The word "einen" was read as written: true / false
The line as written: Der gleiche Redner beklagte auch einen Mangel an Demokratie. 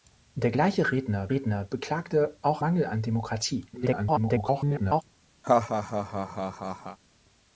false